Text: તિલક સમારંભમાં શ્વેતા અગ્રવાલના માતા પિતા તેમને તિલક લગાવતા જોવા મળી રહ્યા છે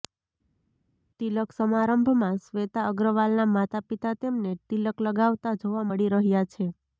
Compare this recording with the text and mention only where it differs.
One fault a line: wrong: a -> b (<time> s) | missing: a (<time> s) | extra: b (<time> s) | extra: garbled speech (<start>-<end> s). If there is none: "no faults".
no faults